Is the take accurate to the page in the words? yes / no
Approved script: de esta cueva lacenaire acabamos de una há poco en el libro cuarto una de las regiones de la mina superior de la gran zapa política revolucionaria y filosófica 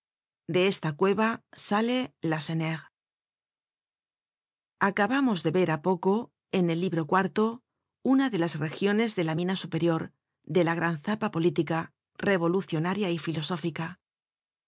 no